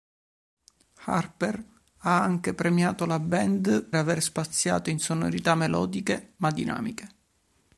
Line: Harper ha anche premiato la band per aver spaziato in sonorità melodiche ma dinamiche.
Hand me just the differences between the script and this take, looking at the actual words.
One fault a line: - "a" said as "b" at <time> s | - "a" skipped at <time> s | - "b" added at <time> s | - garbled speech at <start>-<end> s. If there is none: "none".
- "per" skipped at 3.8 s